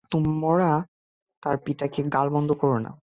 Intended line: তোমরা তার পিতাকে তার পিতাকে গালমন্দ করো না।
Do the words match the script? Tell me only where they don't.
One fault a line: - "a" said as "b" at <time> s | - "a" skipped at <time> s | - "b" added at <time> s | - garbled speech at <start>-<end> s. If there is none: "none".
- "তার পিতাকে" skipped at 2.0 s